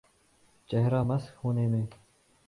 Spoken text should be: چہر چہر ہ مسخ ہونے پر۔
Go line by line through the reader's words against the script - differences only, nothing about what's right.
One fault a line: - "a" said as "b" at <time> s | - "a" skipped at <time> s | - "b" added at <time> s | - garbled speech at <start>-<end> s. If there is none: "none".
- "چہر" skipped at 0.9 s
- "پر" said as "میں" at 1.7 s